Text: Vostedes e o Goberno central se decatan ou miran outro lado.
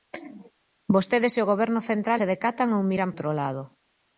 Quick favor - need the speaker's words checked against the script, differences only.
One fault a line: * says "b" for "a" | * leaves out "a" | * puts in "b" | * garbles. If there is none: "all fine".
all fine